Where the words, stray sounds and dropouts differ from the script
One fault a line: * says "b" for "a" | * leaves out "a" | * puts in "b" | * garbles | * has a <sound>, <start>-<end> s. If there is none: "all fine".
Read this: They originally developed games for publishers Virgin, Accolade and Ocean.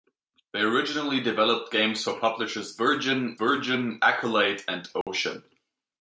* puts in "Virgin"
* has a dropout, 5.0-5.1 s